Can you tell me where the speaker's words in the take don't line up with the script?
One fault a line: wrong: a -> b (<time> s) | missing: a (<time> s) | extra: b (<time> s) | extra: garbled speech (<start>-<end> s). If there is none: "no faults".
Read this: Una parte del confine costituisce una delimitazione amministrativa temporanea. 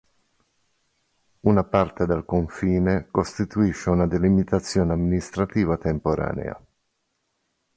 no faults